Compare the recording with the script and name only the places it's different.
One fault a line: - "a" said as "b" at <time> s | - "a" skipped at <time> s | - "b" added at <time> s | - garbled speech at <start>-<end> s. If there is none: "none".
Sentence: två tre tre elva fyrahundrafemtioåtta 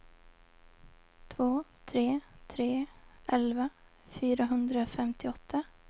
none